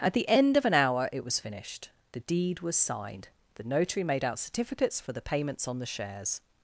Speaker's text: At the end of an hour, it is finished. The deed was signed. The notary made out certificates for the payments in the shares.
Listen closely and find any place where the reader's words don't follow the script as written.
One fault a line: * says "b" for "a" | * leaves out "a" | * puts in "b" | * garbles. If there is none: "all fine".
* says "was" for "is"
* says "on" for "in"